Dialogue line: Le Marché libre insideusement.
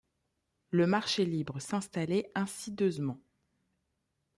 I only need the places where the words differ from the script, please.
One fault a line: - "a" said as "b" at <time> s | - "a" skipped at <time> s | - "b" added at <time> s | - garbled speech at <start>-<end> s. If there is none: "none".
- "s'installait" added at 1.6 s